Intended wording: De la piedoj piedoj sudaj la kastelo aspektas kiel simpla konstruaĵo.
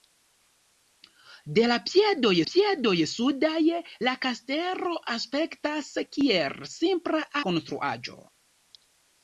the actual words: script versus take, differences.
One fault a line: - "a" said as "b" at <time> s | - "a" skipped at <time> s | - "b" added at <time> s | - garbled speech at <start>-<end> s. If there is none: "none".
none